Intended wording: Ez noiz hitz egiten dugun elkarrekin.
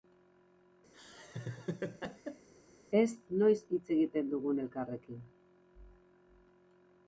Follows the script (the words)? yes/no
yes